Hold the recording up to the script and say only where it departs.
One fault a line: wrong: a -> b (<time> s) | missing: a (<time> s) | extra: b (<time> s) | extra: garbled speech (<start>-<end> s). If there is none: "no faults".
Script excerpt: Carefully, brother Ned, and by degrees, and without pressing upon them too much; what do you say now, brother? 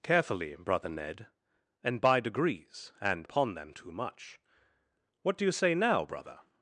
missing: without pressing (3.3 s)